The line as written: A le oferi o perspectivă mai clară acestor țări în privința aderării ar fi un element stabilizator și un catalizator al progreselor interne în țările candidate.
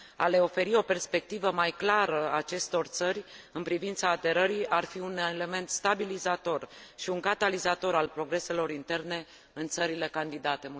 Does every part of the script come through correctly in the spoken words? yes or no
yes